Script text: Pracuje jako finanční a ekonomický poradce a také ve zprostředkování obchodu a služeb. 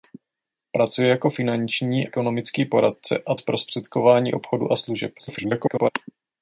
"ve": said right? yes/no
no